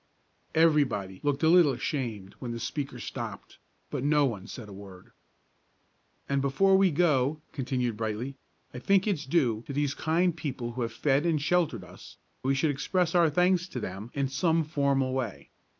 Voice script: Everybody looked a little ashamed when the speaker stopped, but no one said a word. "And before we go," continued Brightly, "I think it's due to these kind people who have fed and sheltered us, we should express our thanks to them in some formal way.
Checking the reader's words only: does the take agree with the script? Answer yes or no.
yes